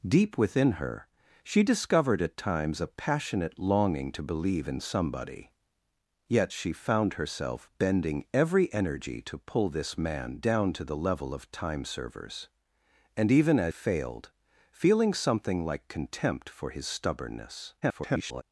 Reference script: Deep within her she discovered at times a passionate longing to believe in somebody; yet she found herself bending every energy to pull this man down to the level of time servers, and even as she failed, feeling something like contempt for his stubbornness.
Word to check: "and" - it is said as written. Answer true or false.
true